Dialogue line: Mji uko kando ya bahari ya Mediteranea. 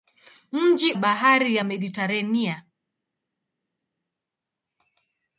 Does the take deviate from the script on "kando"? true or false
true